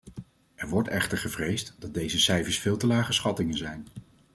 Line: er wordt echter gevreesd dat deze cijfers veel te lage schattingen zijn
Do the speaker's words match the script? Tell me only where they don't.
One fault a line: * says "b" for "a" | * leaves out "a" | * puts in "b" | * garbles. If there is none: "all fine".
all fine